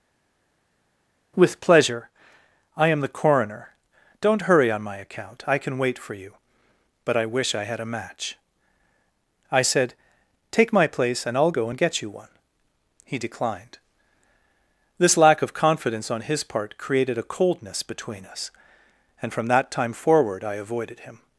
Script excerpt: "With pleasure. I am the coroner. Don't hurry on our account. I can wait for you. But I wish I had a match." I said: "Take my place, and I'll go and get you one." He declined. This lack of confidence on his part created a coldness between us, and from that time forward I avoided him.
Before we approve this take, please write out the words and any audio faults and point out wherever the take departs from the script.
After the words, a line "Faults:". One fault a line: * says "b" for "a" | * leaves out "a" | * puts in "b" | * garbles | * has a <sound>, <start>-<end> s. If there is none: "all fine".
"With pleasure. I am the coroner. Don't hurry on my account. I can wait for you. But I wish I had a match." I said: "Take my place, and I'll go and get you one." He declined. This lack of confidence on his part created a coldness between us, and from that time forward I avoided him.
Faults:
* says "my" for "our"